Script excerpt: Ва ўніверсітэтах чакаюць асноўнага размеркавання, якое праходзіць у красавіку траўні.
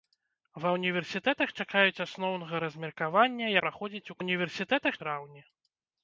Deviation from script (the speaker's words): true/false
true